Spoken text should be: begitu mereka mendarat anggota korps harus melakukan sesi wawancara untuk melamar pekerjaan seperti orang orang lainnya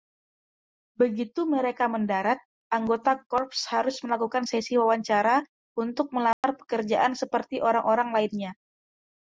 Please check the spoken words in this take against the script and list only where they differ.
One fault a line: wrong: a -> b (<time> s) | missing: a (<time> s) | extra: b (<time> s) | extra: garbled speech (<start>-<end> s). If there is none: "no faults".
no faults